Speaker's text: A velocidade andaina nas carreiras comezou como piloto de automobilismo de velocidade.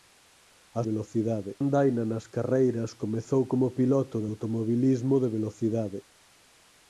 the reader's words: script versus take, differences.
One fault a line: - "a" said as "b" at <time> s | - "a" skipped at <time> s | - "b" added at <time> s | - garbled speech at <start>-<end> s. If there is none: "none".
none